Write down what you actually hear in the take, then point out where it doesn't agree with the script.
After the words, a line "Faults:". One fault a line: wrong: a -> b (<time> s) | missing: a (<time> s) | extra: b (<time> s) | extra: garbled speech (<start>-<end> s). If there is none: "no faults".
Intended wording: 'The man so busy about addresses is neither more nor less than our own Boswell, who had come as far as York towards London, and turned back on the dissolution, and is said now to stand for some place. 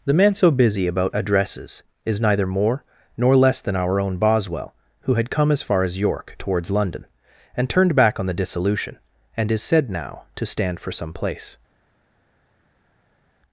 'The man so busy about addresses is neither more nor less than our own Boswell, who had come as far as York towards London, and turned back on the dissolution, and is said now to stand for some place.
Faults:
no faults